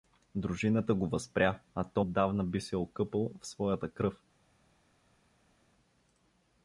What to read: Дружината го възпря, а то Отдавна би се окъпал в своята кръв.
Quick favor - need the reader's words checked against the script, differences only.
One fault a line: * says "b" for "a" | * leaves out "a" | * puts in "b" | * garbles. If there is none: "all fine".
all fine